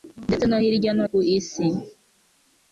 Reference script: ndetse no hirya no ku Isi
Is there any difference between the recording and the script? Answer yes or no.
no